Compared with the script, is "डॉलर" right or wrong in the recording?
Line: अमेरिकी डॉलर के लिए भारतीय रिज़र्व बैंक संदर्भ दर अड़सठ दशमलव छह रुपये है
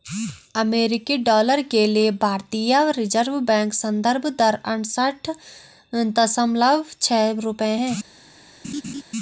right